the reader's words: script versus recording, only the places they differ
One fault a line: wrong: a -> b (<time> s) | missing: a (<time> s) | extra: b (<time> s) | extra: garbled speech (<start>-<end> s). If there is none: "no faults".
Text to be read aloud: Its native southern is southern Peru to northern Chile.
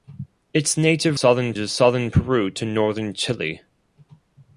no faults